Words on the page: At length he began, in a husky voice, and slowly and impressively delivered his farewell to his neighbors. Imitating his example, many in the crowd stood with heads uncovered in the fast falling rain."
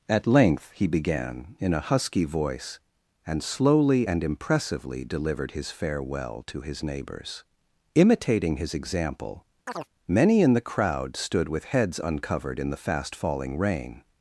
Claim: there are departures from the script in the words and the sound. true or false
true